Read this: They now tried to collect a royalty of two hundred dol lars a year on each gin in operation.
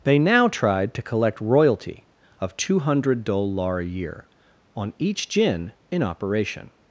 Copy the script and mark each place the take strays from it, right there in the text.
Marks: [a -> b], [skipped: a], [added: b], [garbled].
They now tried to collect [skipped: a] royalty of two hundred dol [lars -> lar] a year on each gin in operation.